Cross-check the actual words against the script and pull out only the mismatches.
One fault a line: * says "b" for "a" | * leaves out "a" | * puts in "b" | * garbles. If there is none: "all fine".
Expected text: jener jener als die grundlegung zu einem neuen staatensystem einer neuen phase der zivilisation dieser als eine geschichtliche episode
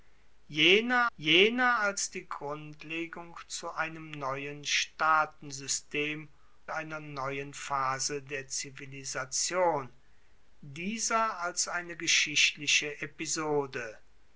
all fine